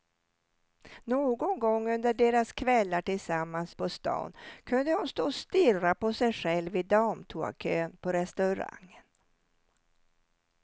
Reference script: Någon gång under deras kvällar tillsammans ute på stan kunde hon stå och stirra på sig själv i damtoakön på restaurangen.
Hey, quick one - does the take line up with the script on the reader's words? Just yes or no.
no